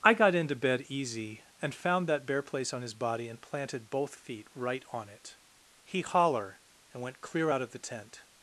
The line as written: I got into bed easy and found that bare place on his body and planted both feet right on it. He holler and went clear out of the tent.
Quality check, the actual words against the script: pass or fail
pass